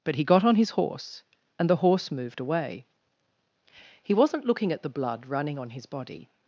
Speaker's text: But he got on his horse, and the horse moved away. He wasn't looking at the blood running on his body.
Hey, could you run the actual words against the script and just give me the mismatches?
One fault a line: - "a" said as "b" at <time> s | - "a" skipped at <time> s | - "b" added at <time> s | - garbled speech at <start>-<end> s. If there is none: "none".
none